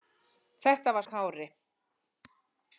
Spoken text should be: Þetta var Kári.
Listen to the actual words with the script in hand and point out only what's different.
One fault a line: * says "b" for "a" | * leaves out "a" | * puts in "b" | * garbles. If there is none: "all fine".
all fine